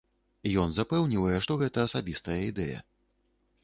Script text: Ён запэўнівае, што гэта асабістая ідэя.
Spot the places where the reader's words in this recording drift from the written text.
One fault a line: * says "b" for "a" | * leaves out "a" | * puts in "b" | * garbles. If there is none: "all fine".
all fine